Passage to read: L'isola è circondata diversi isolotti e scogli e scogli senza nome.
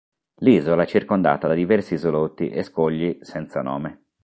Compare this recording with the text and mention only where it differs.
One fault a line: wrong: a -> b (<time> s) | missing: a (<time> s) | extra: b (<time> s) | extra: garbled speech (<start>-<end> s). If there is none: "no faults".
extra: da (1.4 s)
missing: e scogli (3.2 s)